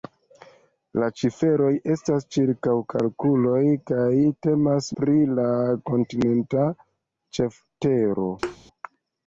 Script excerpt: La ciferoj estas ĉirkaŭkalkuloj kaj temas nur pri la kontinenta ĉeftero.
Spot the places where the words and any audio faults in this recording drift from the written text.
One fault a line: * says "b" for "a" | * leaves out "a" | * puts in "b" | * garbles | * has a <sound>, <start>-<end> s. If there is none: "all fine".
* leaves out "nur"
* has a thud, 8.4-8.6 s